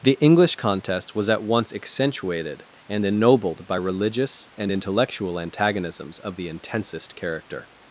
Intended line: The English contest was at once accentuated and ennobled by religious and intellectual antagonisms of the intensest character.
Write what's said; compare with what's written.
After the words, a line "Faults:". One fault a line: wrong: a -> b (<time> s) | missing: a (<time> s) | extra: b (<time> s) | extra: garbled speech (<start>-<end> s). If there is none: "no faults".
The English contest was at once accentuated and ennobled by religious and intellectual antagonisms of the intensest character.
Faults:
no faults